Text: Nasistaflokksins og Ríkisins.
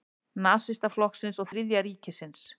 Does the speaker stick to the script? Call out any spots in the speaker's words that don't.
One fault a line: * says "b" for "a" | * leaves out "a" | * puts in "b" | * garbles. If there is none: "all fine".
* puts in "Þriðja"